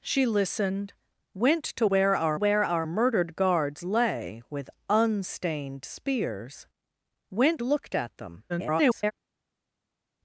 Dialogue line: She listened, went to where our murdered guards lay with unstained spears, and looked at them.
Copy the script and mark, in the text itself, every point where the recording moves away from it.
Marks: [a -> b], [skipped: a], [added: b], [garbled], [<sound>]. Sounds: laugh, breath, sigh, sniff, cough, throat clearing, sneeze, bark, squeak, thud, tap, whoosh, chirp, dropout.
She listened, went to where our [added: where our] murdered guards lay with unstained spears, [and -> went] looked at them. [garbled]